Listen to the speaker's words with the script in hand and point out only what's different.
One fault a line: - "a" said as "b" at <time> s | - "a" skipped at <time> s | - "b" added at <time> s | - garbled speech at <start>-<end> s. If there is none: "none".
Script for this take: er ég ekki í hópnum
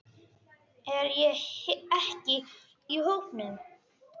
none